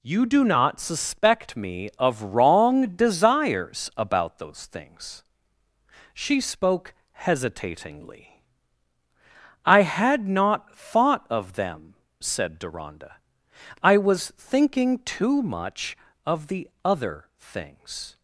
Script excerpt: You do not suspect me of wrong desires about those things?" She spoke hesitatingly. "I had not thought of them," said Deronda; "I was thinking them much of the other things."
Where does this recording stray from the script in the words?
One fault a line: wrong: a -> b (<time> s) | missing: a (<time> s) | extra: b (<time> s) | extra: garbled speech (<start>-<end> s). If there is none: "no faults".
wrong: them -> too (15.0 s)